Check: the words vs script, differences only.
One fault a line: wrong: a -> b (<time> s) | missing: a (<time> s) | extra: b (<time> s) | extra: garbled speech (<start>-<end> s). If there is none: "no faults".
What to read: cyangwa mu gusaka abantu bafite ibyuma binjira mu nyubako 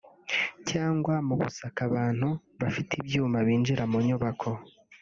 no faults